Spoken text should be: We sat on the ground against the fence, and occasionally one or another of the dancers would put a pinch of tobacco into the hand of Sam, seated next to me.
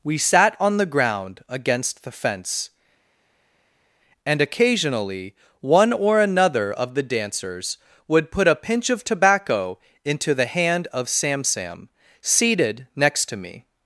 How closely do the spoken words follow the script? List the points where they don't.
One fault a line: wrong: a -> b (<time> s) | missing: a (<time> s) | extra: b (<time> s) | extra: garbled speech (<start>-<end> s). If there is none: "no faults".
extra: Sam (11.4 s)